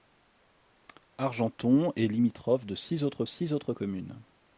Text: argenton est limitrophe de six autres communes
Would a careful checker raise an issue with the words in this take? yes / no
yes